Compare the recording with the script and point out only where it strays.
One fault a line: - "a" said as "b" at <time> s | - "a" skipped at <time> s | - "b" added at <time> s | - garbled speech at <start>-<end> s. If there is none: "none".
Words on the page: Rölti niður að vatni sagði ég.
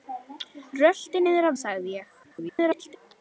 - "vatni" skipped at 1.6 s
- garbled speech at 2.2-3.0 s